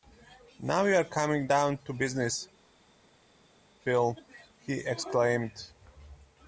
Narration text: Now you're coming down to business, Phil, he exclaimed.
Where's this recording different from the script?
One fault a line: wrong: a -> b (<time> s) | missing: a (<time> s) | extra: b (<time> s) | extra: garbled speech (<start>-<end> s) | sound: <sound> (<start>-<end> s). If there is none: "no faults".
no faults